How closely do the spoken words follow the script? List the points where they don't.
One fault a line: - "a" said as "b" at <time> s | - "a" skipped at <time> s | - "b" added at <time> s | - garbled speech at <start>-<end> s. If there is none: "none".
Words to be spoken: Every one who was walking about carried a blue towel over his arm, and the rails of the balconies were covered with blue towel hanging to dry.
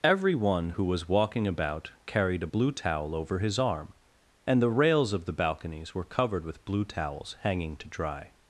- "towel" said as "towels" at 6.8 s